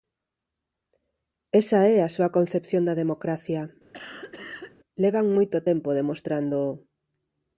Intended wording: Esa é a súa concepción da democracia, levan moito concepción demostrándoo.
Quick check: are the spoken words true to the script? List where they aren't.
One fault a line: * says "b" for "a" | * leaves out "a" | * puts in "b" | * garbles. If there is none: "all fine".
* says "tempo" for "concepción"